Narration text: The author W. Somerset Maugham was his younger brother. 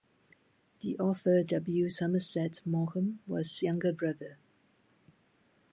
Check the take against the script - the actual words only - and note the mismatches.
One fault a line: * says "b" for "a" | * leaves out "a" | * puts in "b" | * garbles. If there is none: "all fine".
* leaves out "his"